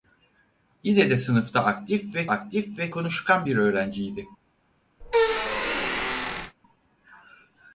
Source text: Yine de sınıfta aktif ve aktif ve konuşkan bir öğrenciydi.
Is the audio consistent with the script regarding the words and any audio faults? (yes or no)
no